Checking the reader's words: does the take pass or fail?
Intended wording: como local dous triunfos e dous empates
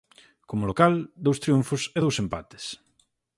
pass